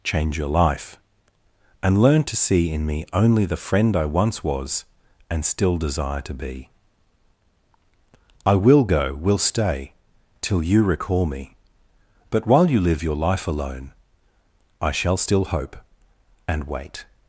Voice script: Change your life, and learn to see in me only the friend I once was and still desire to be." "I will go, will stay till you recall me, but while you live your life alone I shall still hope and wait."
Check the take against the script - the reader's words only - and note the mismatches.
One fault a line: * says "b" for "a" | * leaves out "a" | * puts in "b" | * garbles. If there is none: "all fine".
all fine